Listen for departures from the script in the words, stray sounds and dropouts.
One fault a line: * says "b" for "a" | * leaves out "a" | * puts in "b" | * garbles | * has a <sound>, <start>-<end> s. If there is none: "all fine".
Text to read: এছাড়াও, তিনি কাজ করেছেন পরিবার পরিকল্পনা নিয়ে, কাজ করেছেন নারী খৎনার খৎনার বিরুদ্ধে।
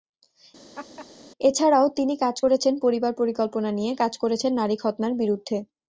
* has a laugh, 0.7-1.1 s
* leaves out "খৎনার"